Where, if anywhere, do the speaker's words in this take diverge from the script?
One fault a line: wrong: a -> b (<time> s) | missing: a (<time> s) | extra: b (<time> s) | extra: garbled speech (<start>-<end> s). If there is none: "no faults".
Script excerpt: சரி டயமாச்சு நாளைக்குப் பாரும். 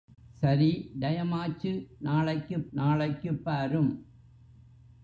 extra: நாளைக்குப் (2.7 s)